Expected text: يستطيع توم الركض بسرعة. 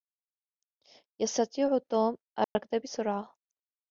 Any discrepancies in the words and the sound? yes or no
yes